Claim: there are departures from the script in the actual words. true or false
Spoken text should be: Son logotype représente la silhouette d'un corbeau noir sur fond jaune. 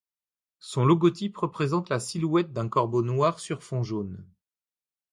false